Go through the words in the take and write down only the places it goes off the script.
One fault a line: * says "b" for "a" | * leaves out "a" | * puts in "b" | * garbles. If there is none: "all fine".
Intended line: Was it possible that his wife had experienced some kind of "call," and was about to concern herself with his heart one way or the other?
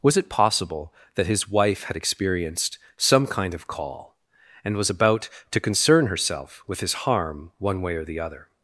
* says "harm" for "heart"